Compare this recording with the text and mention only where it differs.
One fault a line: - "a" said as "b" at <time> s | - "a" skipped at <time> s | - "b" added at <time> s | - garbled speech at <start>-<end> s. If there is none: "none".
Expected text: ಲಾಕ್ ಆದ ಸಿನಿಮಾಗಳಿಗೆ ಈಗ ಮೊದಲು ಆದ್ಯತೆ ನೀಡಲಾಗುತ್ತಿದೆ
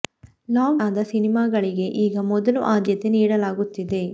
none